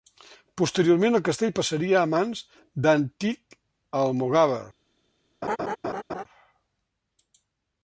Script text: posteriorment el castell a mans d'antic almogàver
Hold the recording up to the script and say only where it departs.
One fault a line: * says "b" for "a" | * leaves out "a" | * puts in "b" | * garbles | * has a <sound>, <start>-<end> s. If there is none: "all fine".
* puts in "passaria"
* has a laugh, 5.4-6.2 s